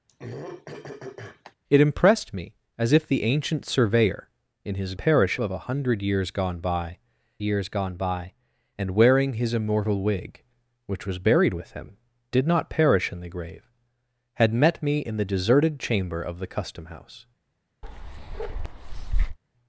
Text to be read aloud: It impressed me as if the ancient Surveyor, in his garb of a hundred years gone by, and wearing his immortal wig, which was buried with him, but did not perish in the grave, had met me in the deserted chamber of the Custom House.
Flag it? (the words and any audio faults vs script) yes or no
yes